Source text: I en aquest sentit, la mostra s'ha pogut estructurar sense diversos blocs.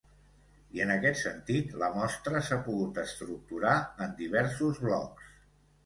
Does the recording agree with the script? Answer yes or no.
no